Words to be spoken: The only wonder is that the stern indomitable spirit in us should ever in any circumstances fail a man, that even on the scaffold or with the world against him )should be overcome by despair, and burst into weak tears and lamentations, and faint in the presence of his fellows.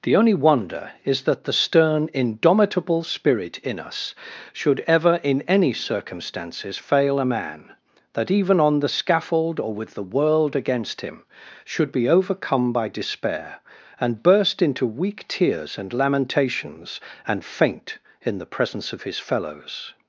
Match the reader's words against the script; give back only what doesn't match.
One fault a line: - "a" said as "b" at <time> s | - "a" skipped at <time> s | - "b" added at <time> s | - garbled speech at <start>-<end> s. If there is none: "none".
none